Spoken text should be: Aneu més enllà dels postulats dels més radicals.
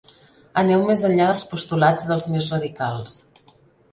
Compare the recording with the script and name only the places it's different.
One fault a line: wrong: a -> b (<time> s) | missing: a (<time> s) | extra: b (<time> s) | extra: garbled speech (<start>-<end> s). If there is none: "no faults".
no faults